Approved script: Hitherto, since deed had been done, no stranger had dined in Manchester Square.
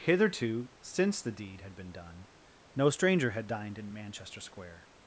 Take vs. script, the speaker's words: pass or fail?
fail